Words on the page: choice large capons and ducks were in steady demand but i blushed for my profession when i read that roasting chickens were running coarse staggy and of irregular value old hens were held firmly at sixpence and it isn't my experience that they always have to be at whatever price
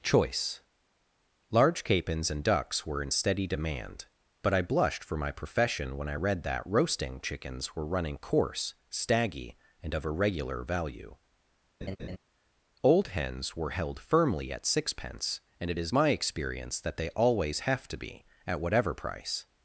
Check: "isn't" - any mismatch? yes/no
yes